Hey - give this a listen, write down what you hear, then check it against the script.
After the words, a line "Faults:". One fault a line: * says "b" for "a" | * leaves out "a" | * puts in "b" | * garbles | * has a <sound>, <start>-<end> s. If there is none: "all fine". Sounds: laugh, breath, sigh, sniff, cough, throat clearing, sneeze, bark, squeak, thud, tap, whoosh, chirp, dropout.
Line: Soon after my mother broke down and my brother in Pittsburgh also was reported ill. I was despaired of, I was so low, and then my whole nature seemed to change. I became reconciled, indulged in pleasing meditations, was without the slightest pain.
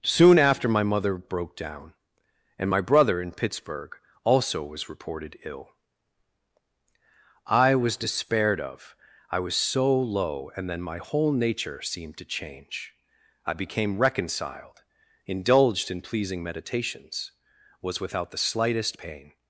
Soon after my mother broke down and my brother in Pittsburgh also was reported ill. I was despaired of, I was so low, and then my whole nature seemed to change. I became reconciled, indulged in pleasing meditations, was without the slightest pain.
Faults:
all fine